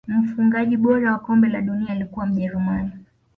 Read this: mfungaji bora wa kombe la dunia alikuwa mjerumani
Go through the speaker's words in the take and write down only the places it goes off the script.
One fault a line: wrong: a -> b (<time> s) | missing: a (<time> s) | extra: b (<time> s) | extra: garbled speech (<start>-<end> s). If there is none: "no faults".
no faults